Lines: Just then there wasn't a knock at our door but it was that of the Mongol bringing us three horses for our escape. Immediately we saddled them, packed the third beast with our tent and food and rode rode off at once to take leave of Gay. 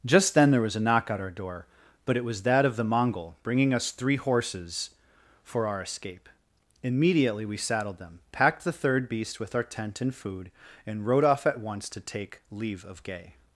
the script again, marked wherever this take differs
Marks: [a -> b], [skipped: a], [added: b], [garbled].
Just then there [wasn't -> was] a knock at our door but it was that of the Mongol bringing us three horses for our escape. Immediately we saddled them, packed the third beast with our tent and food and rode [skipped: rode] off at once to take leave of Gay.